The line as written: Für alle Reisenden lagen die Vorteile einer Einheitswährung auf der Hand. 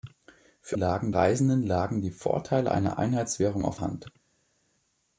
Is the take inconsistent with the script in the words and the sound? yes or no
yes